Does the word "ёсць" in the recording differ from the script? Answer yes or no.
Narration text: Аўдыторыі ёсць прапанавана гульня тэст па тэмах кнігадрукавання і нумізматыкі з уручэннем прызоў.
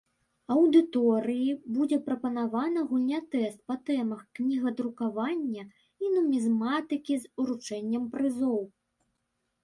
yes